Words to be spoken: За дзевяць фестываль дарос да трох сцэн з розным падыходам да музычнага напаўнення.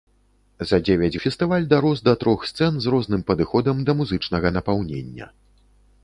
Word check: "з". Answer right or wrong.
right